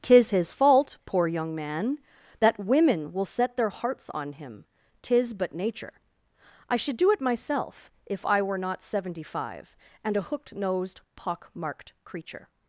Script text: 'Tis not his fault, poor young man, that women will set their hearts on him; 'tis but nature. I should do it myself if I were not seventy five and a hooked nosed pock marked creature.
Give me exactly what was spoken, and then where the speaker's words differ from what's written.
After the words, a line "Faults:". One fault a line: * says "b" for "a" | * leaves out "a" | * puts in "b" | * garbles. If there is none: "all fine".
'Tis his fault, poor young man, that women will set their hearts on him; 'tis but nature. I should do it myself if I were not seventy five and a hooked nosed pock marked creature.
Faults:
* leaves out "not"